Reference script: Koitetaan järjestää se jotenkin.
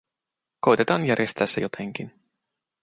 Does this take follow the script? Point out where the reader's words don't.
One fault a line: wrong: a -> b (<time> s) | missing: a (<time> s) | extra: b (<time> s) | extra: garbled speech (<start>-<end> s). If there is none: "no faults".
no faults